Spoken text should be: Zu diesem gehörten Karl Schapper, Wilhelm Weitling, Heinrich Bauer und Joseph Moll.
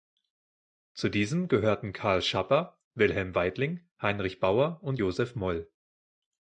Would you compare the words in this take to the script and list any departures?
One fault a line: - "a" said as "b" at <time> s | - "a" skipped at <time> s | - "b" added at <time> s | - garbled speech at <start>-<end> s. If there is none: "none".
none